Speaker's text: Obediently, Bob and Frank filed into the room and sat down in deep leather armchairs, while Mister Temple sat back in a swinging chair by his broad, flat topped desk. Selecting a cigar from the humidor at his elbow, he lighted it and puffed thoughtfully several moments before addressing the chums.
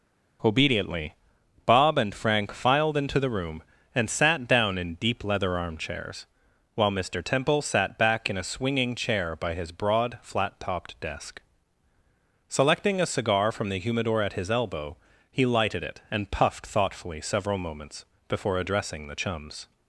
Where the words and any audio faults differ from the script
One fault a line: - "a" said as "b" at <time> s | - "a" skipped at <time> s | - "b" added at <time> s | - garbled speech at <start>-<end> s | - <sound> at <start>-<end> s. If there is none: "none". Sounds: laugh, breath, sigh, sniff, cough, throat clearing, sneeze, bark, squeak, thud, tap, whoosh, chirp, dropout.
none